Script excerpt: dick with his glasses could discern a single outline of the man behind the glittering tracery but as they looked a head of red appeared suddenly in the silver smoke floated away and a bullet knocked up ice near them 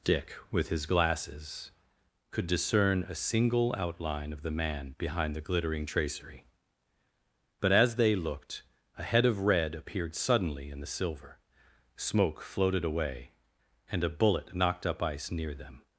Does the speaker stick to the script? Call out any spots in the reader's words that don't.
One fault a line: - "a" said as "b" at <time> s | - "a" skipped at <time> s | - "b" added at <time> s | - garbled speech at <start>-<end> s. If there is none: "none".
none